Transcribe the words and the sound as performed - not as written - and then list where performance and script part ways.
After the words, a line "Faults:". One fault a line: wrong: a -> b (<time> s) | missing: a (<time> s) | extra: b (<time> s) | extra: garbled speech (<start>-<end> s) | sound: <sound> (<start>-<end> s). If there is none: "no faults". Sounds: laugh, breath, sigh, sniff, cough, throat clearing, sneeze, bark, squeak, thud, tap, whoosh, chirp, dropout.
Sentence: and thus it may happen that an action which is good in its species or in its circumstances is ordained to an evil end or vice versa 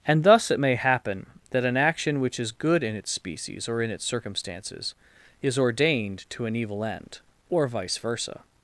and thus it may happen that an action which is good in its species or in its circumstances is ordained to an evil end or vice versa
Faults:
no faults